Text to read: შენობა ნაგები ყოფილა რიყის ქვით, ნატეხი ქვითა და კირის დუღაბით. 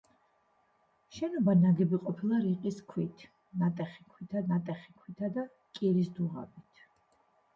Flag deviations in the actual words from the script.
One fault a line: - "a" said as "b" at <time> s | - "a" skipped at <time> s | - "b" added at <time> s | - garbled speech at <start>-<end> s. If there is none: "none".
- "ნატეხი ქვითა" added at 4.5 s